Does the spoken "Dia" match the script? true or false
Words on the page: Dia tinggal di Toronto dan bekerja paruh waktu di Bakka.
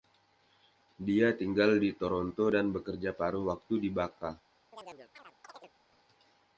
true